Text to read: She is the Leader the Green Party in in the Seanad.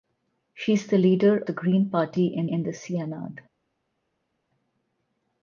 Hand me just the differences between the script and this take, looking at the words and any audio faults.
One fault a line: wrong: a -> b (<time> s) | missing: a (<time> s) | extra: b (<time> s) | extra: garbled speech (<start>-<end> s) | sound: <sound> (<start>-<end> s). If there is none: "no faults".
no faults